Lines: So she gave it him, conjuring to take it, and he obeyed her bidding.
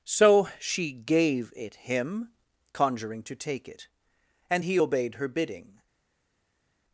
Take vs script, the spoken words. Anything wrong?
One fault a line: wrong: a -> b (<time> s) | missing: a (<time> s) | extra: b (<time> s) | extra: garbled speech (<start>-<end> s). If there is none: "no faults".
no faults